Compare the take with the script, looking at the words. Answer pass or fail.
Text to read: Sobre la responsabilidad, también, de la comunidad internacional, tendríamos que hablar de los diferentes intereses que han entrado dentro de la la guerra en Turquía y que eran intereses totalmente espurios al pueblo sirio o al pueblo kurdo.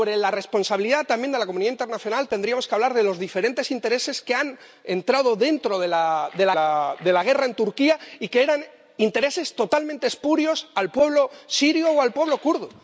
pass